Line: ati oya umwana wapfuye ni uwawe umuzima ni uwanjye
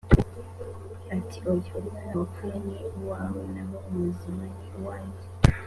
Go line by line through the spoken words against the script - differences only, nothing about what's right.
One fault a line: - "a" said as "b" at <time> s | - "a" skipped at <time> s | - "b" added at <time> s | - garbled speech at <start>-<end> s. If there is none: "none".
- "naho" added at 3.5 s